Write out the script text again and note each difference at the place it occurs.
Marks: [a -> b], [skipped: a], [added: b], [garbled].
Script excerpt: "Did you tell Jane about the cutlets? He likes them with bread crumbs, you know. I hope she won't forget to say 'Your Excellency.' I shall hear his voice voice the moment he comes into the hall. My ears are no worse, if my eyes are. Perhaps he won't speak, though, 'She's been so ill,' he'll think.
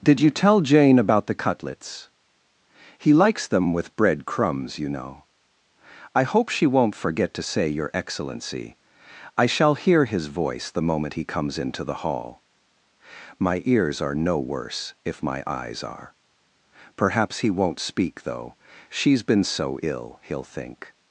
"Did you tell Jane about the cutlets? He likes them with bread crumbs, you know. I hope she won't forget to say 'Your Excellency.' I shall hear his voice [skipped: voice] the moment he comes into the hall. My ears are no worse, if my eyes are. Perhaps he won't speak, though, 'She's been so ill,' he'll think.